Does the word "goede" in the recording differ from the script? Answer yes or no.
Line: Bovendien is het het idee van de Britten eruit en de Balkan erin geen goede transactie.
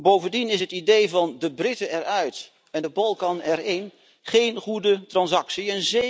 no